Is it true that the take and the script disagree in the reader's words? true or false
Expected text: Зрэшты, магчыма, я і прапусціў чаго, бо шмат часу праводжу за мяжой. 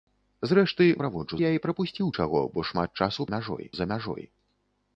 true